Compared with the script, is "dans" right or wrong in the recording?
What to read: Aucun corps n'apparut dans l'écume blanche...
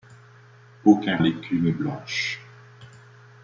wrong